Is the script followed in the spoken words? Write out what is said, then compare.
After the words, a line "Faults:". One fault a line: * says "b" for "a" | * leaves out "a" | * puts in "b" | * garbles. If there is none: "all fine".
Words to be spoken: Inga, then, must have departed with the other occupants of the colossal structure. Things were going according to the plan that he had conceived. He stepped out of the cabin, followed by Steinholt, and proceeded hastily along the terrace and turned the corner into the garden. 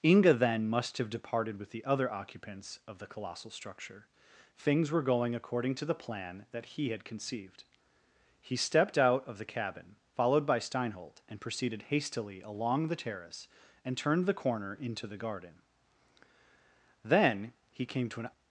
Inga, then, must have departed with the other occupants of the colossal structure. Things were going according to the plan that he had conceived. He stepped out of the cabin, followed by Steinholt, and proceeded hastily along the terrace and turned the corner into the garden. Then he came to an
Faults:
* puts in "Then he came to an"